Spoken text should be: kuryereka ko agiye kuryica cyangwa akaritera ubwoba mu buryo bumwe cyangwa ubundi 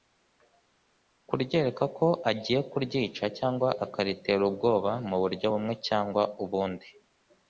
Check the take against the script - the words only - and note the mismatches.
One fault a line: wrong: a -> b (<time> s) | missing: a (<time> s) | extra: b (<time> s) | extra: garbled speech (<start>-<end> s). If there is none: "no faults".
no faults